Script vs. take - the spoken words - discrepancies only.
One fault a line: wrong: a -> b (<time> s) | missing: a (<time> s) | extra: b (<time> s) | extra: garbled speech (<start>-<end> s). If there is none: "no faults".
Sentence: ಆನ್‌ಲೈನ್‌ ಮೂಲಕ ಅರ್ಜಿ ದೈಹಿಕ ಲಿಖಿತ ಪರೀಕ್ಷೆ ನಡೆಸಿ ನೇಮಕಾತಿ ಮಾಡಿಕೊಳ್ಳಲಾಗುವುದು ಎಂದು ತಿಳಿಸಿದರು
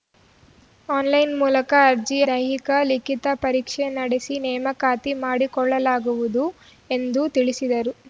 no faults